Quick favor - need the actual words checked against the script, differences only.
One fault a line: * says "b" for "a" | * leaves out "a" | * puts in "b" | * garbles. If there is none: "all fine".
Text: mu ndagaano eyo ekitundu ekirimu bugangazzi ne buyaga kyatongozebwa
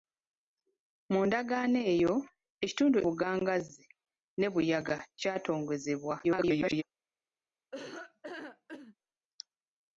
* leaves out "ekirimu"
* garbles